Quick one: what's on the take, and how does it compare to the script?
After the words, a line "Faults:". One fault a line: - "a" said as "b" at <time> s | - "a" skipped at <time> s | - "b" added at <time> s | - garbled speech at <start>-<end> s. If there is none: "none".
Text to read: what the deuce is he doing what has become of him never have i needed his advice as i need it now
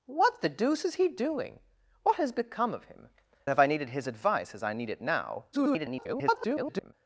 what the deuce is he doing what has become of him have i needed his advice as i need it now [garbled]
Faults:
- "never" skipped at 3.1 s
- garbled speech at 5.5-6.9 s